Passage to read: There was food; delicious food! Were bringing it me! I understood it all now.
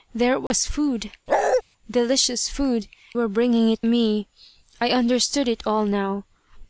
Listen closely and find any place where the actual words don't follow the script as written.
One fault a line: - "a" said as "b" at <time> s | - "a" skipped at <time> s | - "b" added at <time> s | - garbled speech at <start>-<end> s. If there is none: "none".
none